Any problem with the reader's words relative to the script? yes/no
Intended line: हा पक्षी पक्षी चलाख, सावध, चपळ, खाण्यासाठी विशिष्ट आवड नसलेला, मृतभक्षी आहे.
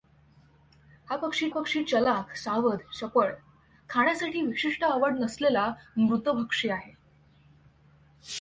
no